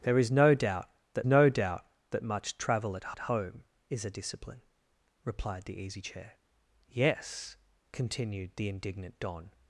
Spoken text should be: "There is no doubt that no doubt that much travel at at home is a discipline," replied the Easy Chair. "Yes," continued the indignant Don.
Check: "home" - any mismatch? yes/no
no